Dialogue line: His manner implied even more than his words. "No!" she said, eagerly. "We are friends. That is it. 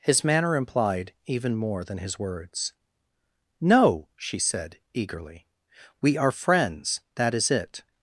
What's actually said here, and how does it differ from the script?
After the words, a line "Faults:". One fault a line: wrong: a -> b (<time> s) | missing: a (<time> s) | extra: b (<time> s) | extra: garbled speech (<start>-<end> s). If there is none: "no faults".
His manner implied even more than his words. "No!" she said, eagerly. "We are friends. That is it.
Faults:
no faults